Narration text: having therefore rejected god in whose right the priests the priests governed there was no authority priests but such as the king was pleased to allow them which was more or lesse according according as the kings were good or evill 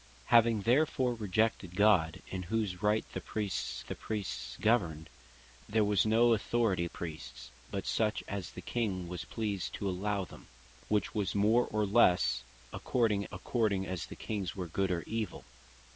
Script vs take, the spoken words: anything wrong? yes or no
no